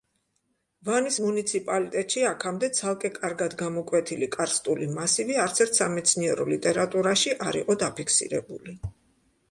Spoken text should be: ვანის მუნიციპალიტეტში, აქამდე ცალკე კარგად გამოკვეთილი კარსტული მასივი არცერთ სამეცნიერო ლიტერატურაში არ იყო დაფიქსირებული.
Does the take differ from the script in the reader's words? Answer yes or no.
no